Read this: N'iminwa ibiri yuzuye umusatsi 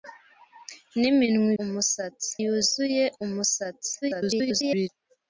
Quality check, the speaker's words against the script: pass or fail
fail